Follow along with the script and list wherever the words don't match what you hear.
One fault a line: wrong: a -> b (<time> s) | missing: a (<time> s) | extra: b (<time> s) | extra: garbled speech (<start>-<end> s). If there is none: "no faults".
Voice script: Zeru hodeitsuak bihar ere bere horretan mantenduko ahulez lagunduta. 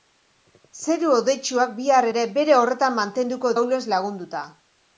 no faults